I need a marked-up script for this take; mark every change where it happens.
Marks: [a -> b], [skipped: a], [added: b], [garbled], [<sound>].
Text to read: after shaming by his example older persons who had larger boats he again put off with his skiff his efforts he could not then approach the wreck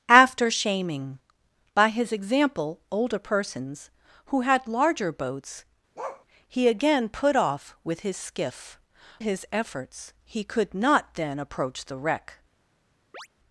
after shaming by his example older persons who had larger boats [bark] he again put off with his skiff his efforts he could not then approach the wreck [chirp]